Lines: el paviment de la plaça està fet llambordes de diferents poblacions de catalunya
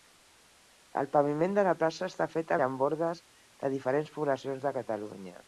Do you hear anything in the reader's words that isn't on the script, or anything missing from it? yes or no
no